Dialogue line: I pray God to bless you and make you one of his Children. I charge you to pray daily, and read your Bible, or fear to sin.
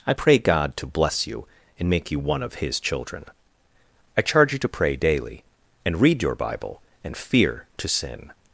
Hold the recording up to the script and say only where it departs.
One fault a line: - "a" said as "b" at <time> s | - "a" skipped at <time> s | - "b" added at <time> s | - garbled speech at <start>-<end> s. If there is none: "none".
- "or" said as "and" at 7.0 s